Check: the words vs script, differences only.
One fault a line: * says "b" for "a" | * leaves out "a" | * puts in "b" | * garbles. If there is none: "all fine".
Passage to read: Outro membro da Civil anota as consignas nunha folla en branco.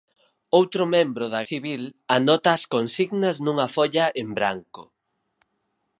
all fine